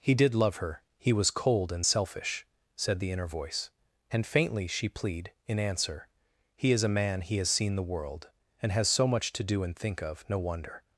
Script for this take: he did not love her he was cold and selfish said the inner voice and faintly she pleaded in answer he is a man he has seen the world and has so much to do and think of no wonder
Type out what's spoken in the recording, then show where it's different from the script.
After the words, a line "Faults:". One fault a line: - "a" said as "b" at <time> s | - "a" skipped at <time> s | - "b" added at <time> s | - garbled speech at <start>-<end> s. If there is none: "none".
he did love her he was cold and selfish said the inner voice and faintly she plead in answer he is a man he has seen the world and has so much to do and think of no wonder
Faults:
- "not" skipped at 0.3 s
- "pleaded" said as "plead" at 4.9 s